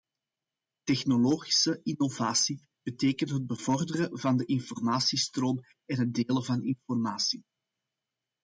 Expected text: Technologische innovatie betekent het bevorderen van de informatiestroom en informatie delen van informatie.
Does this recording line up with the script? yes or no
no